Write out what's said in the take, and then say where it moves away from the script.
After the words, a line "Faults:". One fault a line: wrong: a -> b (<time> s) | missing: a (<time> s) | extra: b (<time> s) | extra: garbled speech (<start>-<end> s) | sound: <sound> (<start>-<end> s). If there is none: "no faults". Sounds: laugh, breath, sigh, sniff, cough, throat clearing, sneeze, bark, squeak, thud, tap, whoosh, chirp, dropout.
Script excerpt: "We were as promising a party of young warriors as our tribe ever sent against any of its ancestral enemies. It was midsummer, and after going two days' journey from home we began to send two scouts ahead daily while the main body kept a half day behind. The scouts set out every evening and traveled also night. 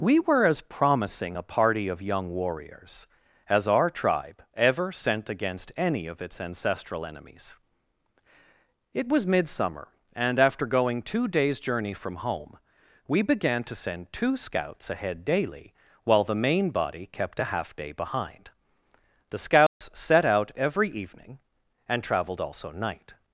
"We were as promising a party of young warriors as our tribe ever sent against any of its ancestral enemies. It was midsummer, and after going two days' journey from home we began to send two scouts ahead daily while the main body kept a half day behind. The scouts set out every evening and traveled also night.
Faults:
sound: dropout (19.7-19.8 s)